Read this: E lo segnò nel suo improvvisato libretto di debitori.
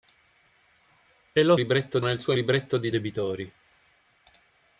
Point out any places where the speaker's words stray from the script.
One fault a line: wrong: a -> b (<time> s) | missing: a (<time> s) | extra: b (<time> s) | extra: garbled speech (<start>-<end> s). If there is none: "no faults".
wrong: segnò -> libretto (1.5 s)
missing: improvvisato (2.3 s)